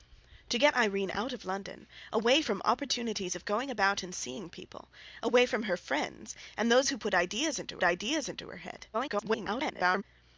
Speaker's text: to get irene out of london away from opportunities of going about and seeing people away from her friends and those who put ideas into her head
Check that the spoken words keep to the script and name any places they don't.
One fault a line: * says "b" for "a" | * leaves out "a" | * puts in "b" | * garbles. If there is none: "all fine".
* puts in "ideas into"
* garbles